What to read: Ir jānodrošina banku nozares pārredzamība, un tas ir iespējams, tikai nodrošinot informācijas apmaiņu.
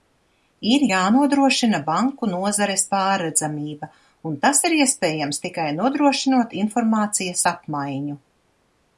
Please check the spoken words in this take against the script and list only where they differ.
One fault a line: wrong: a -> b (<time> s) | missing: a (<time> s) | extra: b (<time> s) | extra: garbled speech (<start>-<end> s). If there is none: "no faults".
no faults